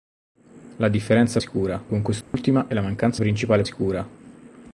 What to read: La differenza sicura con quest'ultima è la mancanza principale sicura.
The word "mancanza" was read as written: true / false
true